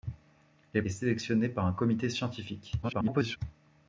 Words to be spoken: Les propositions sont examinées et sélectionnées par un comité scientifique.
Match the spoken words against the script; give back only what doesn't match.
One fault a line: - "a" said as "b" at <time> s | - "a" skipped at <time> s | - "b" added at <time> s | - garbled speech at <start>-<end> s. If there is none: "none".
- "propositions sont examinées" skipped at 0.8 s
- garbled speech at 2.8-3.4 s